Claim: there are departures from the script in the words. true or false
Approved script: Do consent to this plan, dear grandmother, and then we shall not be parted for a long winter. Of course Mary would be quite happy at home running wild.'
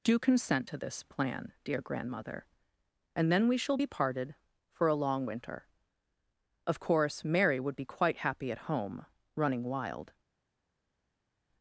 true